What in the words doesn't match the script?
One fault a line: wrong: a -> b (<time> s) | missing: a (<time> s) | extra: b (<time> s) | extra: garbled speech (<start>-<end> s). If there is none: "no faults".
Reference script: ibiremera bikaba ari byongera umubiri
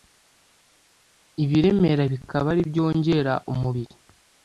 no faults